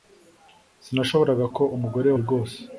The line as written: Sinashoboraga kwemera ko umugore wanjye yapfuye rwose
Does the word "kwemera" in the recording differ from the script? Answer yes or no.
yes